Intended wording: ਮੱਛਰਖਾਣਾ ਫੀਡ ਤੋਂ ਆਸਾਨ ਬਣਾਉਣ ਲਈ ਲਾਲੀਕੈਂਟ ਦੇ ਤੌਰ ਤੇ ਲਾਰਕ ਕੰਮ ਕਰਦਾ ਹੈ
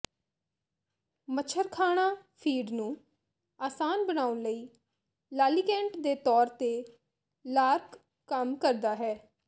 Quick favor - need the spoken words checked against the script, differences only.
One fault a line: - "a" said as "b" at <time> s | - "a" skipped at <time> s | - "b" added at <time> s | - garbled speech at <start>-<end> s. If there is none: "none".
- "ਤੋਂ" said as "ਨੂੰ" at 2.7 s